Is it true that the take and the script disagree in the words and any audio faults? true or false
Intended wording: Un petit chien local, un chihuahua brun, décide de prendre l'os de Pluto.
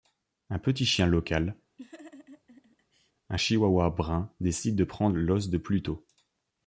true